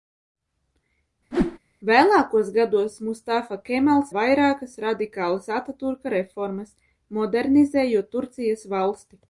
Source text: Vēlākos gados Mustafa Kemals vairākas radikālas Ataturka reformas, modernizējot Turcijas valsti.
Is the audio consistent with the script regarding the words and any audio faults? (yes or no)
no